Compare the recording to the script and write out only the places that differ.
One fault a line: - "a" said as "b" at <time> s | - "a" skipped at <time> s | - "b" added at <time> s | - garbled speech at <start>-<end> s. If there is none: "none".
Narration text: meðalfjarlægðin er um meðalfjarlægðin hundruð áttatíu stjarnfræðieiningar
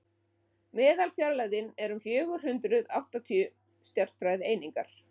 - "meðalfjarlægðin" said as "fjögur" at 2.0 s